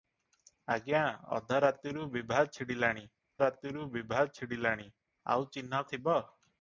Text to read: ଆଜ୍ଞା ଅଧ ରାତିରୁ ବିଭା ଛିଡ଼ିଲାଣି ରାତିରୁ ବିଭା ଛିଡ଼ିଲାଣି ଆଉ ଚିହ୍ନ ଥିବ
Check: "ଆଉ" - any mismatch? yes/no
no